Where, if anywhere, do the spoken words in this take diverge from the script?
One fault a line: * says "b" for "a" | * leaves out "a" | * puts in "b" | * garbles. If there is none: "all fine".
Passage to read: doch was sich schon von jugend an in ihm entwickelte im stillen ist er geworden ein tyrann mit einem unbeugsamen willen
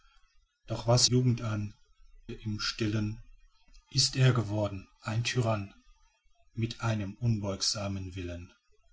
* leaves out "sich schon von"
* leaves out "in ihm entwickelte"